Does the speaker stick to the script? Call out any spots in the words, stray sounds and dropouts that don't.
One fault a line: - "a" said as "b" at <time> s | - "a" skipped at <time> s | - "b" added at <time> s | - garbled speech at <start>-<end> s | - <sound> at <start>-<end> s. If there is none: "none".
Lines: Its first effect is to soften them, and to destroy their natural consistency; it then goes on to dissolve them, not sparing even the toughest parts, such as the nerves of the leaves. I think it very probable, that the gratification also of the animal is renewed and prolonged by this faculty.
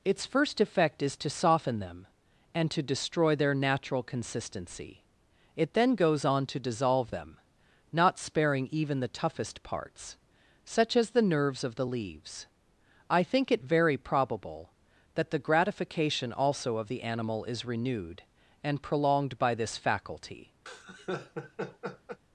- laugh at 20.7-22.2 s